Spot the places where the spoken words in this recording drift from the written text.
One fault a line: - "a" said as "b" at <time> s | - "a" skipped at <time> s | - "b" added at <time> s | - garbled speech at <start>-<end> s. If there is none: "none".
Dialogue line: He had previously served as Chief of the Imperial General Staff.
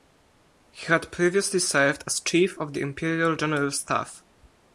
none